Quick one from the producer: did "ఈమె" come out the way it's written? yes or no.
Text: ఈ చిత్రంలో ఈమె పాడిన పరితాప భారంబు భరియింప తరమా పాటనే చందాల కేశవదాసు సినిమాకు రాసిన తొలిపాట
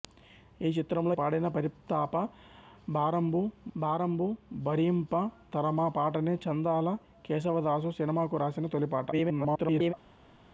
no